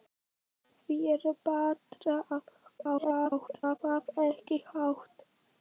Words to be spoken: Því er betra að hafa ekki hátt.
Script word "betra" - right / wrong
right